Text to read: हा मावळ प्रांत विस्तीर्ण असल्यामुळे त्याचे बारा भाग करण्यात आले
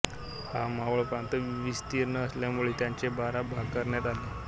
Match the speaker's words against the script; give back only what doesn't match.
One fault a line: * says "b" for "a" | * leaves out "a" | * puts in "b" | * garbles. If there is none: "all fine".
all fine